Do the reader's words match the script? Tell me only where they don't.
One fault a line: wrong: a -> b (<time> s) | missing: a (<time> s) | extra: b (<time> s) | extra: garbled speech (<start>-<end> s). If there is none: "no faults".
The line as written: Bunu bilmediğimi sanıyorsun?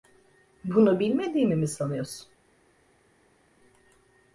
extra: mi (1.6 s)